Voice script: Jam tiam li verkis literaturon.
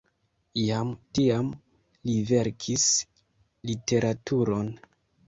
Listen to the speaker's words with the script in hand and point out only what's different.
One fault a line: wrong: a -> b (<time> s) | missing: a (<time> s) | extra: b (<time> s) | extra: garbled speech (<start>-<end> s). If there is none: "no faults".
no faults